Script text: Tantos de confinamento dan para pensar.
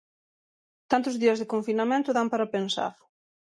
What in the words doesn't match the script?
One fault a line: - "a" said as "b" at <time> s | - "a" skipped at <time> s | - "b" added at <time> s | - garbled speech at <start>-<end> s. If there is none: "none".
- "días" added at 1.2 s